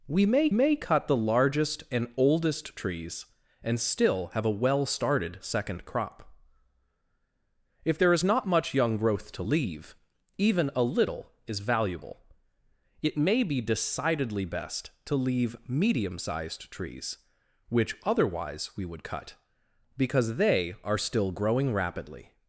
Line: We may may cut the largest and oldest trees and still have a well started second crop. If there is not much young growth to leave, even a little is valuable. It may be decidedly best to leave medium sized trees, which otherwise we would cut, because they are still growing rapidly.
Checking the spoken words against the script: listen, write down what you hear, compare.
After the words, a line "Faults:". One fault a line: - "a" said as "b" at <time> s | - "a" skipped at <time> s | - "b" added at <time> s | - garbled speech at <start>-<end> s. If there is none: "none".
We may may cut the largest and oldest trees and still have a well started second crop. If there is not much young growth to leave, even a little is valuable. It may be decidedly best to leave medium sized trees, which otherwise we would cut, because they are still growing rapidly.
Faults:
none